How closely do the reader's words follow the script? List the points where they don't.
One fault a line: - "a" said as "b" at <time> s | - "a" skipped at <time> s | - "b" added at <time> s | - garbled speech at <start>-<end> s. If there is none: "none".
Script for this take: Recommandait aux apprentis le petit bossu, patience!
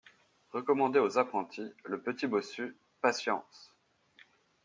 none